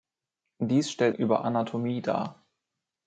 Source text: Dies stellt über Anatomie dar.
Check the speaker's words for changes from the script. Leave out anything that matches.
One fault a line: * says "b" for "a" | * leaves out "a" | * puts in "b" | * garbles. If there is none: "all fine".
all fine